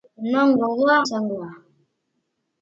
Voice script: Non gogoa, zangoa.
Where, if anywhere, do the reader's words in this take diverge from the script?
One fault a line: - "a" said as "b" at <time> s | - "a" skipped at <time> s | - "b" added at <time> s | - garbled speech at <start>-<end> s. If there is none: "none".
none